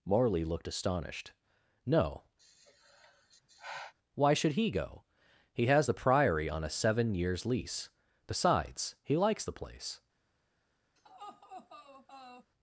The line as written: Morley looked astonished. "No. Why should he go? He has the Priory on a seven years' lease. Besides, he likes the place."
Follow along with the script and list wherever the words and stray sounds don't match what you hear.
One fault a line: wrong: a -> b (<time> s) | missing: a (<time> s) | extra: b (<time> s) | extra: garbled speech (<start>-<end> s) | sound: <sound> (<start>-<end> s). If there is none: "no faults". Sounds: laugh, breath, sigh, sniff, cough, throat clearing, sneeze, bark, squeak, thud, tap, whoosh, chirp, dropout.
sound: sigh (2.4-3.9 s)
sound: laugh (11.0-12.5 s)